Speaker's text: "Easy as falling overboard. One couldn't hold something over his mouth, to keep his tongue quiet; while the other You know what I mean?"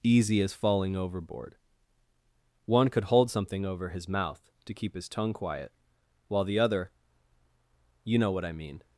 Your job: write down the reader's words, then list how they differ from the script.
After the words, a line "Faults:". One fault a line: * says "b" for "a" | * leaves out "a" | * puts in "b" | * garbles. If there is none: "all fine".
"Easy as falling overboard. One could hold something over his mouth, to keep his tongue quiet; while the other You know what I mean?"
Faults:
* says "could" for "couldn't"